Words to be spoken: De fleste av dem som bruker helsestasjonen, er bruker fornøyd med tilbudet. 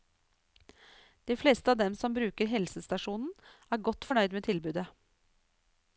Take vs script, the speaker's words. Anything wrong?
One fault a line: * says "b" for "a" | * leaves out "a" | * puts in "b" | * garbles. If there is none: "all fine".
* says "godt" for "bruker"